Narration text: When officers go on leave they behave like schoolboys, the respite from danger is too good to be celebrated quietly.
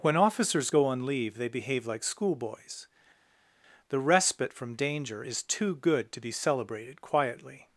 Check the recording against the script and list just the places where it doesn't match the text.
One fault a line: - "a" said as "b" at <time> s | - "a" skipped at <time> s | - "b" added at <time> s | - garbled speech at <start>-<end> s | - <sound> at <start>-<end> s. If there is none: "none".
none